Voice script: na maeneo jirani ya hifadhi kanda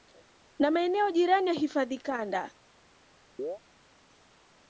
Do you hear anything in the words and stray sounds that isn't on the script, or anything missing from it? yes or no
yes